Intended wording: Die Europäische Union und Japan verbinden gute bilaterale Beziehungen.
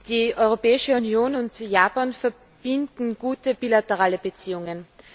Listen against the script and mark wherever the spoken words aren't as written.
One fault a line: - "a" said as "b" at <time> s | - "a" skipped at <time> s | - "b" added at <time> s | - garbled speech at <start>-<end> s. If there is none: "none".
none